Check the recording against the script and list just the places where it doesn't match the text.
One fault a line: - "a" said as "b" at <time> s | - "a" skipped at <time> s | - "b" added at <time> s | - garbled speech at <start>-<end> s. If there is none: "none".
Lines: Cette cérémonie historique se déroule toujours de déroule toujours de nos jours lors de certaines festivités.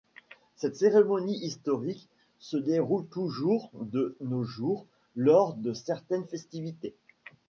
- "déroule toujours de" skipped at 4.2 s